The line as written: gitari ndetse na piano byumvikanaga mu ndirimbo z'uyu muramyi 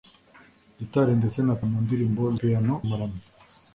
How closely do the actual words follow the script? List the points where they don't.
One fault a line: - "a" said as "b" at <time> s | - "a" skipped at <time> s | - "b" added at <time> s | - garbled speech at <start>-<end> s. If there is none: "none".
- "piano byumvikanaga" skipped at 1.6 s
- "z'uyu" said as "piano" at 2.4 s